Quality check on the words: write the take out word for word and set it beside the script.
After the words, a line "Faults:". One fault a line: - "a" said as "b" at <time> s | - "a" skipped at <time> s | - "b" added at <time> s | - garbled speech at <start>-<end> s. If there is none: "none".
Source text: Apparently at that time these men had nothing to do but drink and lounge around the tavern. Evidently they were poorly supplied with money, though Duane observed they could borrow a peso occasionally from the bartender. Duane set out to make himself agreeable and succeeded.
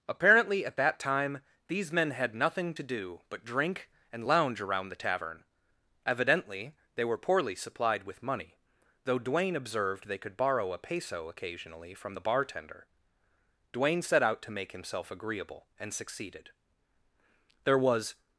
Apparently at that time these men had nothing to do but drink and lounge around the tavern. Evidently they were poorly supplied with money, though Duane observed they could borrow a peso occasionally from the bartender. Duane set out to make himself agreeable and succeeded. There was
Faults:
- "There was" added at 17.6 s